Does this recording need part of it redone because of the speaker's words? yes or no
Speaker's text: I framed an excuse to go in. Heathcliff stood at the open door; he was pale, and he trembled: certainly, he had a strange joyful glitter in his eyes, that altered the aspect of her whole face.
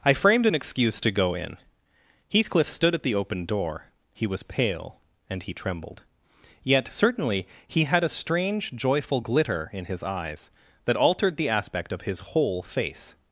yes